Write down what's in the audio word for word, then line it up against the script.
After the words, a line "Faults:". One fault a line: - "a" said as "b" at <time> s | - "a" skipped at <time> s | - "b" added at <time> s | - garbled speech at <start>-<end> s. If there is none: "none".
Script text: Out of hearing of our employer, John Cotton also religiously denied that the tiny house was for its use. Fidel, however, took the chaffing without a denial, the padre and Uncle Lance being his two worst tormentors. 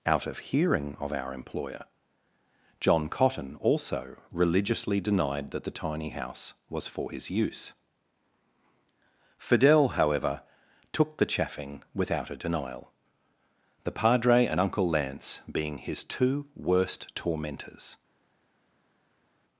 Out of hearing of our employer, John Cotton also religiously denied that the tiny house was for his use. Fidel, however, took the chaffing without a denial, the padre and Uncle Lance being his two worst tormentors.
Faults:
- "its" said as "his" at 7.1 s